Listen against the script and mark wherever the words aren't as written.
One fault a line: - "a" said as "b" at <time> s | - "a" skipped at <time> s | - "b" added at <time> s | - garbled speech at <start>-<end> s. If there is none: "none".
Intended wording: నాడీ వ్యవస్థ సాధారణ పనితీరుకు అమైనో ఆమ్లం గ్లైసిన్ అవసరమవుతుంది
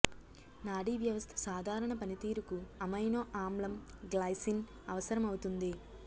none